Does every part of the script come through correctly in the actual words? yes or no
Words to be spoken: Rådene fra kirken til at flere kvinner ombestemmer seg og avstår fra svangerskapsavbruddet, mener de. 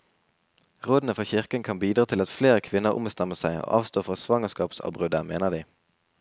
no